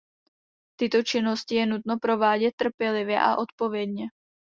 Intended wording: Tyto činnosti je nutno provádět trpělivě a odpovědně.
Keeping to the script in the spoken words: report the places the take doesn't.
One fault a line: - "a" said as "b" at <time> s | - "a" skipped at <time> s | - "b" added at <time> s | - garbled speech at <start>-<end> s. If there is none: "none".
none